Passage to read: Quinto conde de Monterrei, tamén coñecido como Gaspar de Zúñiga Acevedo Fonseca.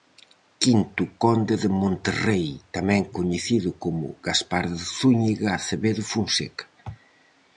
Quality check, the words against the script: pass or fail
pass